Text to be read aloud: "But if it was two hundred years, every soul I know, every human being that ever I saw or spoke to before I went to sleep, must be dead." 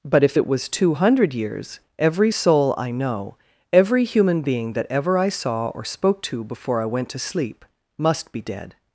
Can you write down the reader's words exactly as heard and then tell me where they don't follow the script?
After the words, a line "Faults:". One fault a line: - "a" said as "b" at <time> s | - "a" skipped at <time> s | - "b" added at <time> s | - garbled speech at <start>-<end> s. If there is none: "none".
"But if it was two hundred years, every soul I know, every human being that ever I saw or spoke to before I went to sleep, must be dead."
Faults:
none